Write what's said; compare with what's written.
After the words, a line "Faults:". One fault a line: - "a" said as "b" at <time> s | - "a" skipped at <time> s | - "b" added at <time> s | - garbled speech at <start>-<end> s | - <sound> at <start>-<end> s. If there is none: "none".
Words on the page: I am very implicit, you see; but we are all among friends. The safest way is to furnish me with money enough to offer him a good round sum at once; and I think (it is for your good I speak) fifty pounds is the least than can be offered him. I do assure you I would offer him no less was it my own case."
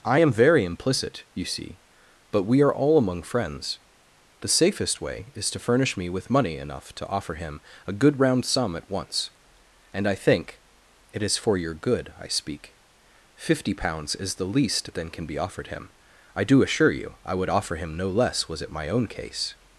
I am very implicit, you see; but we are all among friends. The safest way is to furnish me with money enough to offer him a good round sum at once; and I think (it is for your good I speak) fifty pounds is the least than can be offered him. I do assure you I would offer him no less was it my own case."
Faults:
none